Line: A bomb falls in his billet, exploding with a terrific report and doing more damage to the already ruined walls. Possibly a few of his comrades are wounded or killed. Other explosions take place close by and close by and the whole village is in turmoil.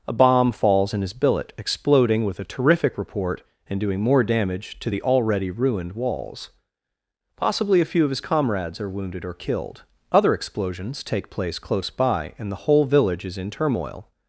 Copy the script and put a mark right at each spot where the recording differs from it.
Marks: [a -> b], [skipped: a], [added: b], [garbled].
A bomb falls in his billet, exploding with a terrific report and doing more damage to the already ruined walls. Possibly a few of his comrades are wounded or killed. Other explosions take place close by and [skipped: close by and] the whole village is in turmoil.